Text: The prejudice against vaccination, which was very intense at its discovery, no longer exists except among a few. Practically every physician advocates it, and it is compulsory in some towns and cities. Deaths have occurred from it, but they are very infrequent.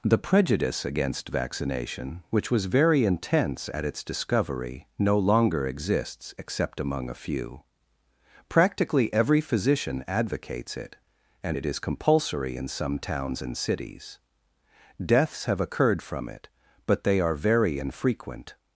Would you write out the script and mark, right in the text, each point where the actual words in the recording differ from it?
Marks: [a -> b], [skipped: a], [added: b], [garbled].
The prejudice against vaccination, which was very intense at its discovery, no longer exists except among a few. Practically every physician advocates it, and it is compulsory in some towns and cities. Deaths have occurred from it, but they are very infrequent.